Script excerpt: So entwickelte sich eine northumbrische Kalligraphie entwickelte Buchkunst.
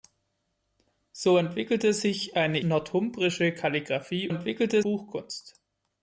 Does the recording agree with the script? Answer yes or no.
yes